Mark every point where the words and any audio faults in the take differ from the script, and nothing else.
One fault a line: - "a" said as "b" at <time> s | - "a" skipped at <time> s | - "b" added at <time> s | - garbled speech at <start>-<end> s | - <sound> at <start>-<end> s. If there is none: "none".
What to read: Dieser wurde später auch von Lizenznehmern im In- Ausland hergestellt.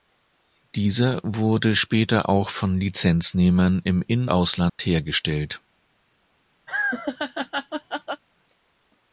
- dropout at 4.7-4.8 s
- laugh at 6.7-8.2 s